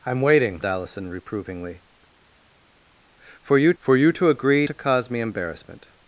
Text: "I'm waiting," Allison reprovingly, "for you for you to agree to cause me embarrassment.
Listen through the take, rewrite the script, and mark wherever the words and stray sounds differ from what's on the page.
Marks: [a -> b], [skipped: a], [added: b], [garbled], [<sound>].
"I'm waiting," Allison reprovingly, "for you for you to agree to cause me embarrassment.